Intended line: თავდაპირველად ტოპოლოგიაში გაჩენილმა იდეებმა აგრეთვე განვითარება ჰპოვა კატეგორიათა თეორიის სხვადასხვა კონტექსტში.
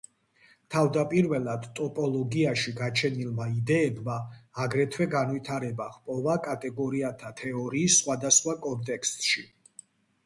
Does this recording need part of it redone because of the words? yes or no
no